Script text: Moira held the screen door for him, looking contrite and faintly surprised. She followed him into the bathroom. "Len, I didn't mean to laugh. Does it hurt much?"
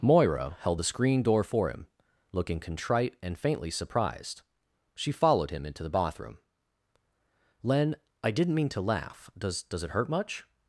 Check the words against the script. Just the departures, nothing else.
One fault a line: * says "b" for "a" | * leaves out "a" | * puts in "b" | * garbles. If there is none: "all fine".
* puts in "Does"